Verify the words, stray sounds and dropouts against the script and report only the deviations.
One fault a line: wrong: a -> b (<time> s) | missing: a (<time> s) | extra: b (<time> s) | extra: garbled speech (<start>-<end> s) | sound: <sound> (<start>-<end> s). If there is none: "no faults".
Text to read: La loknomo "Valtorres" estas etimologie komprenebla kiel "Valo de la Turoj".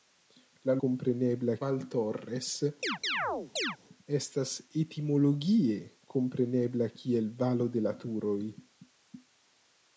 wrong: loknomo -> komprenebla (0.9 s)
sound: chirp (2.8-3.8 s)